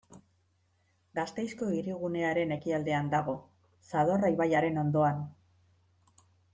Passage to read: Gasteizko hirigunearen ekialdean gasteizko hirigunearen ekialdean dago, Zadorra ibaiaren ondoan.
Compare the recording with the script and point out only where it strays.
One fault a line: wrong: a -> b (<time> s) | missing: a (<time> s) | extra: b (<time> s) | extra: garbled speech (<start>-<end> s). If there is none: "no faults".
missing: gasteizko hirigunearen ekialdean (3.1 s)